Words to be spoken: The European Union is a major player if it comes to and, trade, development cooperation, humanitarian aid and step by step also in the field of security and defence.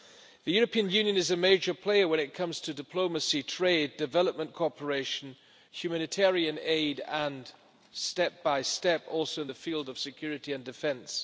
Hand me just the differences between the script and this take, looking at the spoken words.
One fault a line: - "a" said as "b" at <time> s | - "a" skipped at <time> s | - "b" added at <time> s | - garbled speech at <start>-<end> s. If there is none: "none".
- "if" said as "when" at 2.1 s
- "and" said as "diplomacy" at 2.7 s